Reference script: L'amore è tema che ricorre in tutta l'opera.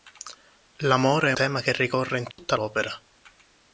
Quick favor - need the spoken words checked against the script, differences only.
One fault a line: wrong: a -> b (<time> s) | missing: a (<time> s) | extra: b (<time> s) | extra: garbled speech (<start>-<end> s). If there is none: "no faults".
no faults